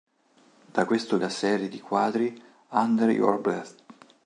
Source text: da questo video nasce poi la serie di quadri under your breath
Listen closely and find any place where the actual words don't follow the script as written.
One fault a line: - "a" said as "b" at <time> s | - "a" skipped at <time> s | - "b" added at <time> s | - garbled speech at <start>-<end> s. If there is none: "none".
- "video nasce poi" skipped at 1.2 s